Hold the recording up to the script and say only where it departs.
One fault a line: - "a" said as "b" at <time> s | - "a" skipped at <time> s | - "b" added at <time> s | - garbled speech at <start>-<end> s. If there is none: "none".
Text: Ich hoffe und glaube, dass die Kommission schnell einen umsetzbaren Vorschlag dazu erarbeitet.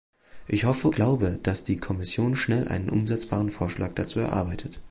- "und" skipped at 0.9 s